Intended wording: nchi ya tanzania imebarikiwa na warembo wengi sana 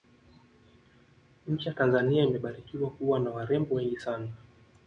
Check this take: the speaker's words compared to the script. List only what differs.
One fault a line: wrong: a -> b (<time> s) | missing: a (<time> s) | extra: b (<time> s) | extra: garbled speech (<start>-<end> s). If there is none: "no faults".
extra: kuwa (2.9 s)